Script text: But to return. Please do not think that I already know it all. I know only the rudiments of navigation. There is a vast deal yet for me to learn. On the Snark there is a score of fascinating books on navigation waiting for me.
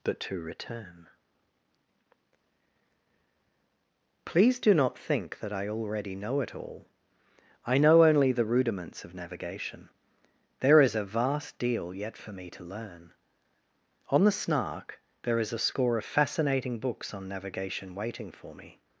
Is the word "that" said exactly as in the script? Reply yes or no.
yes